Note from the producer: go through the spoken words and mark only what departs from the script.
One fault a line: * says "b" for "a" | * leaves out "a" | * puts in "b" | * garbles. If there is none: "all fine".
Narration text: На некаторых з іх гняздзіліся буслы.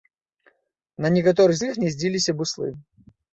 all fine